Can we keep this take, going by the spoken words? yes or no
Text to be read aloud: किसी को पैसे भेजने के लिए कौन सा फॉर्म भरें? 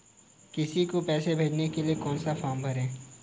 yes